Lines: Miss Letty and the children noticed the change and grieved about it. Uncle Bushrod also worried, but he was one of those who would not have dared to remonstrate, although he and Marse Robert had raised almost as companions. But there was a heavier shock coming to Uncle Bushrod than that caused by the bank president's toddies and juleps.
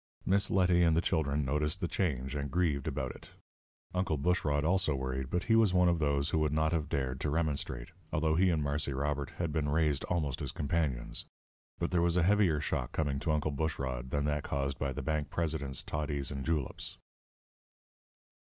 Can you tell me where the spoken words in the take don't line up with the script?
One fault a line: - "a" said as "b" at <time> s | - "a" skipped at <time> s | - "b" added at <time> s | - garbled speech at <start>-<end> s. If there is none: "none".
- "been" added at 9.5 s